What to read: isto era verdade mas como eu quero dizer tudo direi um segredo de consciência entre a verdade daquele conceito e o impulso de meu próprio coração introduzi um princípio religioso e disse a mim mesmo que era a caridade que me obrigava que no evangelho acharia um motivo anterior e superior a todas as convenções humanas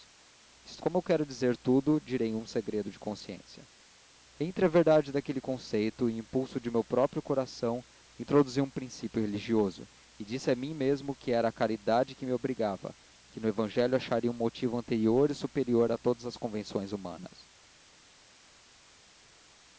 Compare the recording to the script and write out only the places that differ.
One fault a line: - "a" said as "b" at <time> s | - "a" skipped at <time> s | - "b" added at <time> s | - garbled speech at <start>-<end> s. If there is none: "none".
- "era verdade mas" skipped at 0.8 s